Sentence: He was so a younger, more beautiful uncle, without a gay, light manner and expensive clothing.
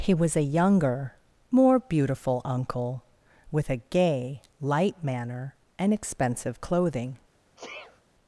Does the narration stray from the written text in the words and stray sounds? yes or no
yes